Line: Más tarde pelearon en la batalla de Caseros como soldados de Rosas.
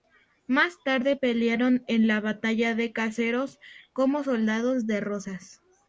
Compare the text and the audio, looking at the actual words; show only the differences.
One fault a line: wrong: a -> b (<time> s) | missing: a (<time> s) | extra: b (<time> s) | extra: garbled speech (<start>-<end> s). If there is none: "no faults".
no faults